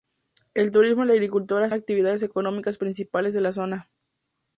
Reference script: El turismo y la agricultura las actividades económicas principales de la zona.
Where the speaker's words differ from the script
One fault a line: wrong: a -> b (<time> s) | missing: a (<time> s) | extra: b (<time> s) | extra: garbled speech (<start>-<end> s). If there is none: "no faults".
no faults